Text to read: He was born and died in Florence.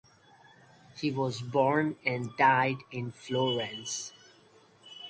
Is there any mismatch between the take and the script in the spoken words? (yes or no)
no